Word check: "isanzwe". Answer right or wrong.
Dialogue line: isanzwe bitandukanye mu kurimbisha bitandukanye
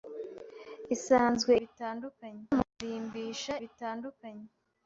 right